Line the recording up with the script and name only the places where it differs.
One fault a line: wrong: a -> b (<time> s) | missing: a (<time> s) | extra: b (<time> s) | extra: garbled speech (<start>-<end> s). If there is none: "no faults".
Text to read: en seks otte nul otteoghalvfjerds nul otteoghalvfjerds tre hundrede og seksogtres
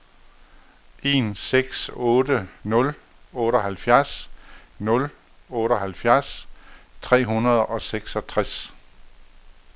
no faults